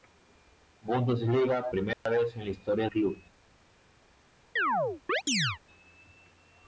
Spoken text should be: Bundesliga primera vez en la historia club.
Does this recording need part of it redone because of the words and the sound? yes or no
yes